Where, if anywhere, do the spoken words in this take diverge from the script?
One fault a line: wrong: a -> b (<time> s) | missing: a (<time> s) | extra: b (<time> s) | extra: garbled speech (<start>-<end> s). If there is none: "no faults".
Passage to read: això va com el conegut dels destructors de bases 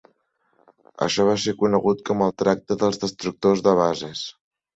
extra: ser conegut (1.4 s)
wrong: conegut -> tracte (2.4 s)